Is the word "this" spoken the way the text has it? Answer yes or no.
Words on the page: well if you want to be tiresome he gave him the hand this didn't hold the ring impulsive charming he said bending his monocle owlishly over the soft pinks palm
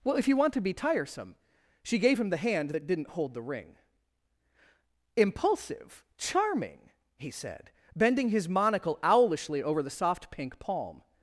no